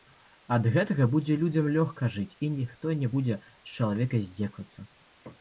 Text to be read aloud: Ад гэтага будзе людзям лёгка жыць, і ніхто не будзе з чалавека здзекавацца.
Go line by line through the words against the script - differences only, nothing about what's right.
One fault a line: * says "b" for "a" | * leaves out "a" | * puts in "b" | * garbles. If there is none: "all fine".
all fine